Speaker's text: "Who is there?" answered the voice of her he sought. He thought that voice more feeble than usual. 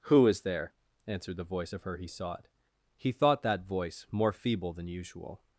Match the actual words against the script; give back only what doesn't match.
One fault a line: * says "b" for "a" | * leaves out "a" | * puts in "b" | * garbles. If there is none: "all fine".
all fine